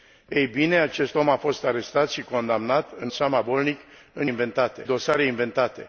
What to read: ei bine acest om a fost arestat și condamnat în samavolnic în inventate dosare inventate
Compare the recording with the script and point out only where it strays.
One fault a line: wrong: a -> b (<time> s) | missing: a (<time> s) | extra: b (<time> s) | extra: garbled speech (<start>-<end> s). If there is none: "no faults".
no faults